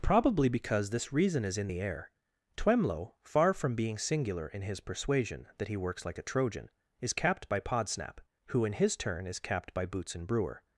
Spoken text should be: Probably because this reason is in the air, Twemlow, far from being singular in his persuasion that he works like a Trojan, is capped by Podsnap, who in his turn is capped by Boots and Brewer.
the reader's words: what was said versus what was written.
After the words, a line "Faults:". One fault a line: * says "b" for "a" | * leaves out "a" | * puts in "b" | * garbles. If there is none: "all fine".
Probably because this reason is in the air, Twemlow, far from being singular in his persuasion that he works like a Trojan, is capped by Podsnap, who in his turn is capped by Boots and Brewer.
Faults:
all fine